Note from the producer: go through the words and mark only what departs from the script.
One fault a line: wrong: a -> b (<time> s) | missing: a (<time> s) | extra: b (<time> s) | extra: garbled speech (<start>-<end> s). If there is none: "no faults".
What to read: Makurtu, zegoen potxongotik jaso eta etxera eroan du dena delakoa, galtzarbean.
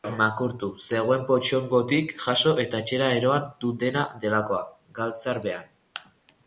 no faults